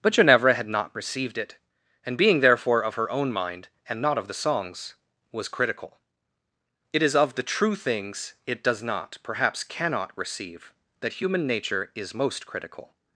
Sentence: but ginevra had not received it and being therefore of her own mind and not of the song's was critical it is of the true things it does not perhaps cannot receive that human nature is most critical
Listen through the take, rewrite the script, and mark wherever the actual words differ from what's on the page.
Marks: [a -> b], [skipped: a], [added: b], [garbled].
but ginevra had not received it and being therefore of her own mind and not of the song's was critical it is of the true things it does not perhaps cannot receive that human nature is most critical